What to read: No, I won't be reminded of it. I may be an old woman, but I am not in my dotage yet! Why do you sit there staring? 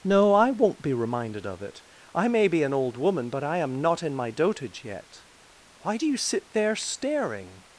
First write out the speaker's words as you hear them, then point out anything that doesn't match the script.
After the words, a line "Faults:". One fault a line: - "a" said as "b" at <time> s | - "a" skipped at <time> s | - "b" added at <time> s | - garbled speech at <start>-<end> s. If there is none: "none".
No, I won't be reminded of it. I may be an old woman, but I am not in my dotage yet! Why do you sit there staring?
Faults:
none